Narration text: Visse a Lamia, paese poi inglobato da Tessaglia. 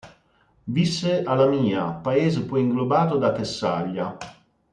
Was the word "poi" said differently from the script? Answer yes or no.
no